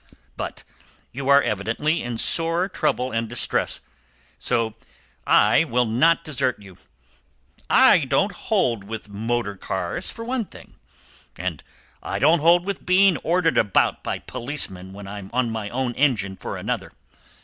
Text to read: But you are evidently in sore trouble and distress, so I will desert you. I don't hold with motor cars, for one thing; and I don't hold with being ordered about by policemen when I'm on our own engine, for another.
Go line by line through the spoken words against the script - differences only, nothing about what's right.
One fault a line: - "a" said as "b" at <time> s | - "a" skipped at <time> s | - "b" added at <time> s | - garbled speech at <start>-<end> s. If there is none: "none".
- "not" added at 5.8 s
- "our" said as "my" at 15.5 s